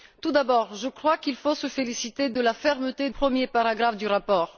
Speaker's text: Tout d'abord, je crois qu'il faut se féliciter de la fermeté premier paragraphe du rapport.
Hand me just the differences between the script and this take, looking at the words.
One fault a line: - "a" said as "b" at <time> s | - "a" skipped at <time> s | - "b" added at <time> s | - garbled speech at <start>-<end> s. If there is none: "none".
none